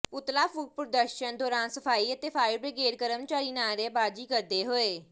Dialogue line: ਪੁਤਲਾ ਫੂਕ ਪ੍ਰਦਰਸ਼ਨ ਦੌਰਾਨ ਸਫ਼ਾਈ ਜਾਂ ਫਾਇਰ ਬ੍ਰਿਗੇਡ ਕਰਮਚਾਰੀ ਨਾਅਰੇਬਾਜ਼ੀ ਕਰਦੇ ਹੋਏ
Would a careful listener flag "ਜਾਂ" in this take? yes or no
yes